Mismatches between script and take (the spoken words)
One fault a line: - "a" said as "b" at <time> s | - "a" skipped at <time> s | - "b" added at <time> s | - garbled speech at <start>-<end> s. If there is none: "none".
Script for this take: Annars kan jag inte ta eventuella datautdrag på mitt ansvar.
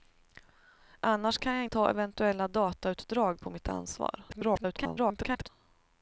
- "inte" skipped at 1.6 s
- garbled speech at 4.3-5.5 s